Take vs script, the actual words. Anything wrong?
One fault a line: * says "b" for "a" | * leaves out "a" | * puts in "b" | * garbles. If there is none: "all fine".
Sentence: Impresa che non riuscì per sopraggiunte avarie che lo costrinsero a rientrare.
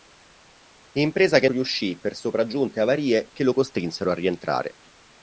* leaves out "non"